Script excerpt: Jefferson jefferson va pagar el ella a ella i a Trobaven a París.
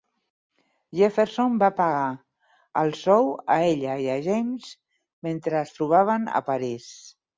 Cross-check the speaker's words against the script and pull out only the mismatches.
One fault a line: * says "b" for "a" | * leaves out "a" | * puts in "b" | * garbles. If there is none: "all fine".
* leaves out "jefferson"
* says "sou" for "ella"
* puts in "James mentre es"